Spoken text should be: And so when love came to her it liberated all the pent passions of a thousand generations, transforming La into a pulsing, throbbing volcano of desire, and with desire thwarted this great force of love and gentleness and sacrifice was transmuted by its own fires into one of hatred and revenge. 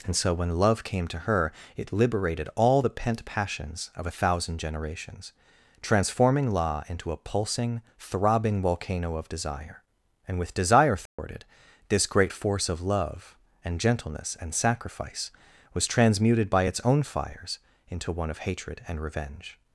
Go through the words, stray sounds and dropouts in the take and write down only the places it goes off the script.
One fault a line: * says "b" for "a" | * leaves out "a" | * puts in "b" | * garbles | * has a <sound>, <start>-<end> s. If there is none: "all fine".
* has a dropout, 11.1-11.2 s